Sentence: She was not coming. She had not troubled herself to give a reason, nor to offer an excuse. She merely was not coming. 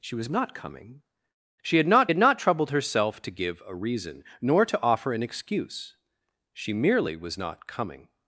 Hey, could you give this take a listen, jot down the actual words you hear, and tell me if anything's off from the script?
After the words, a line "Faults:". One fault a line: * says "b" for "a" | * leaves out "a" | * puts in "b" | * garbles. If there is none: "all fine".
She was not coming. She had not had not troubled herself to give a reason, nor to offer an excuse. She merely was not coming.
Faults:
* puts in "had not"